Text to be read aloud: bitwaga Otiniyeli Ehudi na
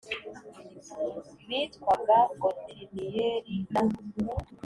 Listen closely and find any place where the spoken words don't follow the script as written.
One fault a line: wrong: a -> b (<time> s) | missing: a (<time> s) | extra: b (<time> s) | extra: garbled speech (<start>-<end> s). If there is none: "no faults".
missing: Ehudi (3.6 s)